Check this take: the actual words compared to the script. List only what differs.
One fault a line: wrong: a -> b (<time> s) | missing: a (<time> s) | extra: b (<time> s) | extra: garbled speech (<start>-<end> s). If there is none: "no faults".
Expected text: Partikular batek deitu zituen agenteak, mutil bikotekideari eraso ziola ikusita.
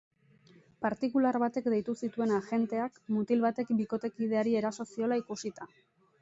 extra: batek (3.5 s)